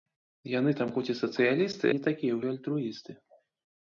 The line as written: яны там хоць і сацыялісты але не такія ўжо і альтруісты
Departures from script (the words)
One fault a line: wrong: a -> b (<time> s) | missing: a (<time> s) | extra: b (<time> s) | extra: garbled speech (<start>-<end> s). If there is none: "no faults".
missing: але (1.9 s)
missing: ўжо (2.4 s)